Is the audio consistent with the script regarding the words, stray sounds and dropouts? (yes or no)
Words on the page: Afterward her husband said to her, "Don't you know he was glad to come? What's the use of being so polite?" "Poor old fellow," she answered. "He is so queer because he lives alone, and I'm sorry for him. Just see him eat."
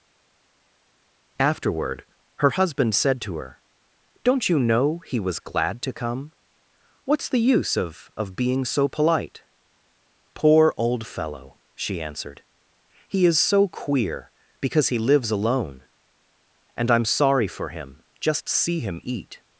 no